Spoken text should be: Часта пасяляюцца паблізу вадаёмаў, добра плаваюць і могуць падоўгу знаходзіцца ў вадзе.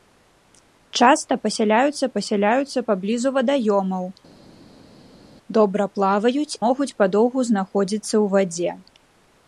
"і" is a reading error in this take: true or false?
true